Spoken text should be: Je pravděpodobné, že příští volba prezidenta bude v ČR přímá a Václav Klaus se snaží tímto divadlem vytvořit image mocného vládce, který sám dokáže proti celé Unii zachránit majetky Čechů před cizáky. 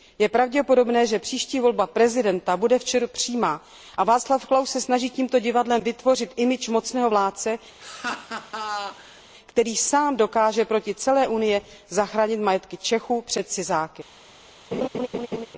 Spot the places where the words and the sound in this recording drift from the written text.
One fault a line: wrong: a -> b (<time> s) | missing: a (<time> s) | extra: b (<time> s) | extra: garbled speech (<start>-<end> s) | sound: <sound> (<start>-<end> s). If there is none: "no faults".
sound: laugh (7.8-9.2 s)
sound: laugh (14.7-15.5 s)